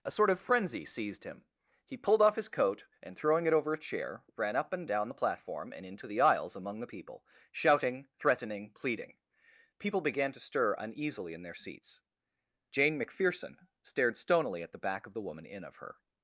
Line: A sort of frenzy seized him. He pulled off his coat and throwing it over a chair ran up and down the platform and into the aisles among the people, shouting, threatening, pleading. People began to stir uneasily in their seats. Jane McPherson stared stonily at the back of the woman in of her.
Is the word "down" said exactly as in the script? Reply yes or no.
yes